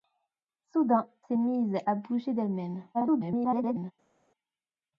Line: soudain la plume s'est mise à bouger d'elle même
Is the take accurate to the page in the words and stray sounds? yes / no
no